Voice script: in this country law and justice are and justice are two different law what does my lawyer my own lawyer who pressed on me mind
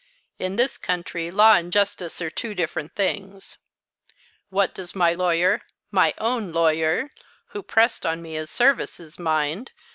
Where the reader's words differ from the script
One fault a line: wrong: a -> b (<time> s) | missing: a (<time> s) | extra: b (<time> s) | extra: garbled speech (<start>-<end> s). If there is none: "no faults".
missing: and justice are (2.3 s)
wrong: law -> things (2.9 s)
extra: his services (8.3 s)